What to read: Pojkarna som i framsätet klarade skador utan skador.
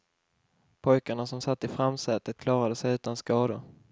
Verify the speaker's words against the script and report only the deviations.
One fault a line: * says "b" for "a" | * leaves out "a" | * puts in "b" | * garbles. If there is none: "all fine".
* puts in "satt"
* says "sig" for "skador"